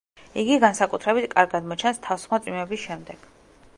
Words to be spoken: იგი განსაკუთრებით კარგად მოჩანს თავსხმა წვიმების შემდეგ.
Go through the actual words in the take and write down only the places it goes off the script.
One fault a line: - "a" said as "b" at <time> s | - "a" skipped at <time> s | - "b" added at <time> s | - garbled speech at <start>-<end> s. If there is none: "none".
none